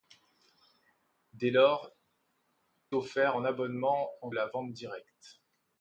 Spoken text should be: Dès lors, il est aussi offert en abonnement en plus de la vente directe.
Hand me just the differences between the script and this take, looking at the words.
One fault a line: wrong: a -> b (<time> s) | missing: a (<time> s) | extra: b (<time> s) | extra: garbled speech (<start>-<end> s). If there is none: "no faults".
missing: il est aussi (1.9 s)
missing: plus de (4.3 s)